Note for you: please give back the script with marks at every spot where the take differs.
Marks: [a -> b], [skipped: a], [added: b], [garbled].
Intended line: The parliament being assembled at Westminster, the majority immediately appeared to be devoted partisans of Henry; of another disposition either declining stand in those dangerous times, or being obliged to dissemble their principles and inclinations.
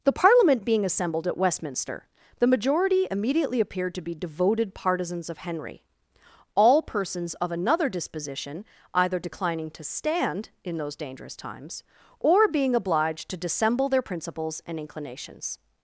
The parliament being assembled at Westminster, the majority immediately appeared to be devoted partisans of Henry; [added: all persons] of another disposition either declining [added: to] stand in those dangerous times, or being obliged to dissemble their principles and inclinations.